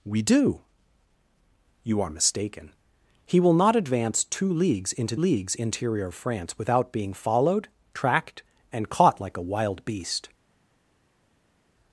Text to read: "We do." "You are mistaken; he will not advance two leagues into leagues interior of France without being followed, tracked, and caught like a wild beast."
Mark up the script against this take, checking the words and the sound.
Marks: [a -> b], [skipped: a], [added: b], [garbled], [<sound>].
"We do." "You are mistaken; he will not advance two leagues into leagues interior of France without being followed, tracked, and caught like a wild beast."